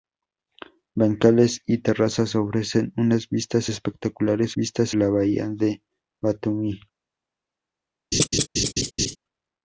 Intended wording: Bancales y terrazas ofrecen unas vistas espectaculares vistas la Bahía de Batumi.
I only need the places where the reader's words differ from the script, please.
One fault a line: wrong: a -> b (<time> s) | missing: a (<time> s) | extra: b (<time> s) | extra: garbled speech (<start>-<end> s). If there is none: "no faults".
no faults